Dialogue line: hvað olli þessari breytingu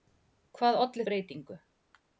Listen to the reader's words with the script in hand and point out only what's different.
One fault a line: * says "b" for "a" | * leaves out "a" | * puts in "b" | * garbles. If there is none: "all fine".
* leaves out "þessari"